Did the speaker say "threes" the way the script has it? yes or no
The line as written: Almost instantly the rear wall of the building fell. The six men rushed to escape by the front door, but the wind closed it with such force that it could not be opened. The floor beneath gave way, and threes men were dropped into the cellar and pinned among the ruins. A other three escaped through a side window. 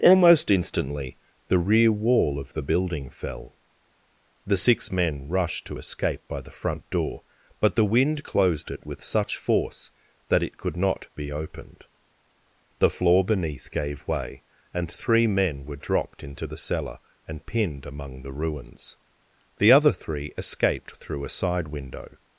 no